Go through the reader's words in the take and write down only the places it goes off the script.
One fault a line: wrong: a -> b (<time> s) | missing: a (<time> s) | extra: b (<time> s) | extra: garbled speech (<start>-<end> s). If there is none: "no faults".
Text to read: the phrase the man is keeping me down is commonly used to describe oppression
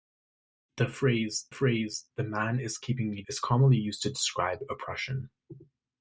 extra: phrase (1.5 s)
missing: down (3.2 s)